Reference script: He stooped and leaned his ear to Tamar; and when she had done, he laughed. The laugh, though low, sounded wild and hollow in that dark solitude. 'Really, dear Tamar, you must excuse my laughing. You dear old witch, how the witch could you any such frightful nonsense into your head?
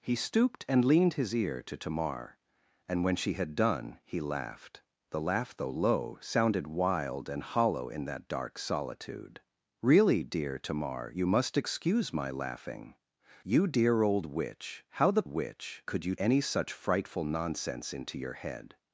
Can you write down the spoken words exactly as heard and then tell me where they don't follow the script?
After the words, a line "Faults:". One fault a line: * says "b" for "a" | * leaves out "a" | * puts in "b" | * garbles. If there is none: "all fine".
He stooped and leaned his ear to Tamar; and when she had done, he laughed. The laugh, though low, sounded wild and hollow in that dark solitude. 'Really, dear Tamar, you must excuse my laughing. You dear old witch, how the witch could you any such frightful nonsense into your head?
Faults:
all fine